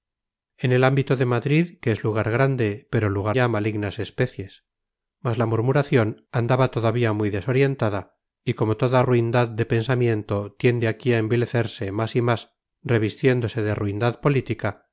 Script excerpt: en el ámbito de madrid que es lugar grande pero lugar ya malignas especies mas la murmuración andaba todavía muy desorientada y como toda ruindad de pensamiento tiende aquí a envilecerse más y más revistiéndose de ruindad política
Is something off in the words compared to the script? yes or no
no